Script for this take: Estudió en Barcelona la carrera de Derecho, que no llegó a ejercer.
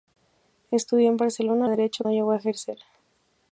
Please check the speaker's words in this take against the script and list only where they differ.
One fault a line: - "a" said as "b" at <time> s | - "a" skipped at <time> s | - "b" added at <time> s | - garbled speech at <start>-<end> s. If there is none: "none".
- "la carrera" skipped at 1.7 s
- "que" skipped at 2.0 s